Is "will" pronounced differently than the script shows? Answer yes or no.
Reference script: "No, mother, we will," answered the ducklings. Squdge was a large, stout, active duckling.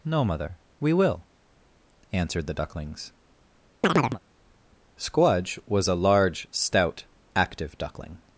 no